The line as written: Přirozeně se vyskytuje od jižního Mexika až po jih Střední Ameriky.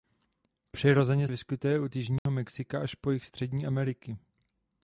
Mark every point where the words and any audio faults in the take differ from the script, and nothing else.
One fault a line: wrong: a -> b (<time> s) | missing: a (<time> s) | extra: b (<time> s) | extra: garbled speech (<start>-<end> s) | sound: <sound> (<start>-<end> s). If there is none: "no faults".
missing: se (1.3 s)
sound: dropout (2.2-2.3 s)